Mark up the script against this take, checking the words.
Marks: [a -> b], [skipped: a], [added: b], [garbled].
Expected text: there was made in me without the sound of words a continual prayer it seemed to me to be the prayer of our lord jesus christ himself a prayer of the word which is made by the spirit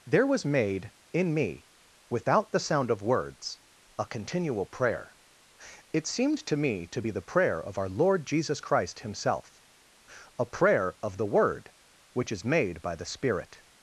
there was made in me without the sound of words a continual prayer it seemed to me to be the prayer of our lord jesus christ himself a prayer of the word which is made by the spirit